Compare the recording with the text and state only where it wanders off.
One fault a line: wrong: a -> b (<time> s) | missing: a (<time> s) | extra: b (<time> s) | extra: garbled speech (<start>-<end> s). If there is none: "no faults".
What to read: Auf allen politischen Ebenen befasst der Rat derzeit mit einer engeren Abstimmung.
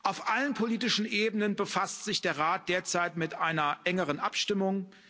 extra: sich (2.1 s)